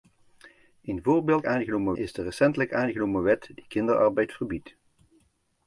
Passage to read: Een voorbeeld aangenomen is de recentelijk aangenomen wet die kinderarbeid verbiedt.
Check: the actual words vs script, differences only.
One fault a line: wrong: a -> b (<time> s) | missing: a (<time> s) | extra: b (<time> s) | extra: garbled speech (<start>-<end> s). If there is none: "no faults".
no faults